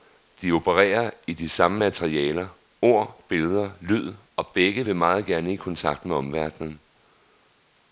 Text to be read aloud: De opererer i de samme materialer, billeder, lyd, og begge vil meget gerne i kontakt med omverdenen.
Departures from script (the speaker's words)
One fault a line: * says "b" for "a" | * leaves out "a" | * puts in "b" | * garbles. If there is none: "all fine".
* puts in "ord"